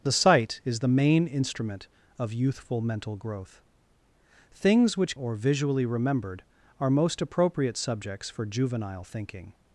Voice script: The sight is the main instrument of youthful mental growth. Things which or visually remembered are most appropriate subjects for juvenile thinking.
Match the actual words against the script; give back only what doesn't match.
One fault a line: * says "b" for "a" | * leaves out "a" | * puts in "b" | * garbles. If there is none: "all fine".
all fine